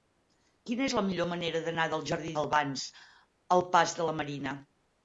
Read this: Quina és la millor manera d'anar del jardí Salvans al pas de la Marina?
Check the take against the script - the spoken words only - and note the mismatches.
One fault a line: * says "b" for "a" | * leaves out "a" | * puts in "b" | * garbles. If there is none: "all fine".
all fine